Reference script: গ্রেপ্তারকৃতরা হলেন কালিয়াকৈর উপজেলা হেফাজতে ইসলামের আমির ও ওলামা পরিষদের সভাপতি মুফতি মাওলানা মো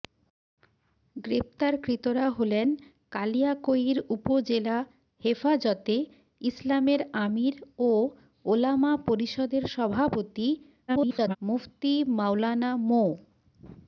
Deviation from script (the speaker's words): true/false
true